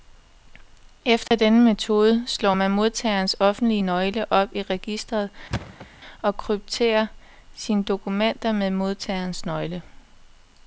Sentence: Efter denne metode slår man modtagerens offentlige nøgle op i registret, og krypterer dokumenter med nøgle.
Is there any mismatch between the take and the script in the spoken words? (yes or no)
yes